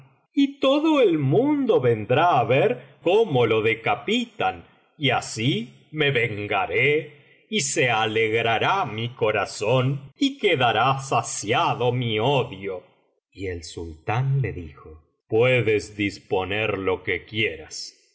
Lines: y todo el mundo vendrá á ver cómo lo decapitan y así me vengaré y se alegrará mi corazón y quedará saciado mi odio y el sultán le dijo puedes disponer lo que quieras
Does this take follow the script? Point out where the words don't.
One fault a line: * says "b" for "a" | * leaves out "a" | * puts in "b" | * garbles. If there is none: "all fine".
all fine